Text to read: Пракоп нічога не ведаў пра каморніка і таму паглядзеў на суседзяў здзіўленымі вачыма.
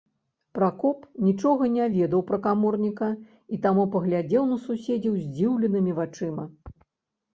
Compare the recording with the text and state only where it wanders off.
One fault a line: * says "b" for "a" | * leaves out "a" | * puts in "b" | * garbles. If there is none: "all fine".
all fine